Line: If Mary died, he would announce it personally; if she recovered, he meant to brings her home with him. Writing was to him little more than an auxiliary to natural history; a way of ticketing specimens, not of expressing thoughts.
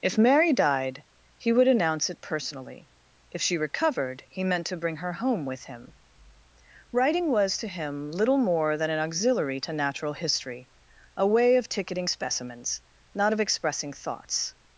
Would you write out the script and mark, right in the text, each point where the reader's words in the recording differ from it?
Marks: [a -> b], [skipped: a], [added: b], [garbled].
If Mary died, he would announce it personally; if she recovered, he meant to [brings -> bring] her home with him. Writing was to him little more than an auxiliary to natural history; a way of ticketing specimens, not of expressing thoughts.